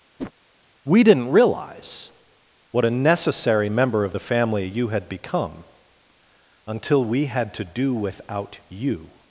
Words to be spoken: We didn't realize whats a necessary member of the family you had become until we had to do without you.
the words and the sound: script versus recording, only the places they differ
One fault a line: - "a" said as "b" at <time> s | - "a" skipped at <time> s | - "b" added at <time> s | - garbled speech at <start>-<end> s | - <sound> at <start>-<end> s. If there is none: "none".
- whoosh at 0.2-0.3 s
- "whats" said as "what" at 2.7 s